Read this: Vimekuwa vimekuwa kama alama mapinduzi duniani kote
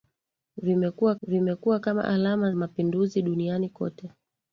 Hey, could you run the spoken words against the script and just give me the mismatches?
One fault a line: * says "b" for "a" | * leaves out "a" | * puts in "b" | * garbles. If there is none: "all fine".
all fine